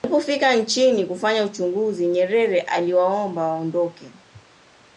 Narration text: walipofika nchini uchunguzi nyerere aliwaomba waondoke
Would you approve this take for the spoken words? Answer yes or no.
no